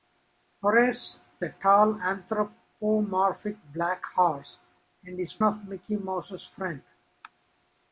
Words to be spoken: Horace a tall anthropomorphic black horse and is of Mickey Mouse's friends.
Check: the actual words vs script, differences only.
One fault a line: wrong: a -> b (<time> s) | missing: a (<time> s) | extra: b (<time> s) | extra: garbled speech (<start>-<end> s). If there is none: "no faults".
no faults